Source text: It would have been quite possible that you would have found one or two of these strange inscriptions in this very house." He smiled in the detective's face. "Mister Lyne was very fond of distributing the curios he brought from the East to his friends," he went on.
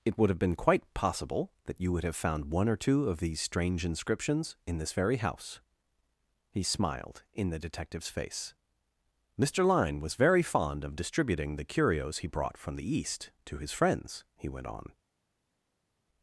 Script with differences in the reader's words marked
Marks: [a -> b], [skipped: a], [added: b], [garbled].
It would have been quite possible that you would have found one or two of these strange inscriptions in this very house." He smiled in the detective's face. "Mister Lyne was very fond of distributing the curios he brought from the East to his friends," he went on.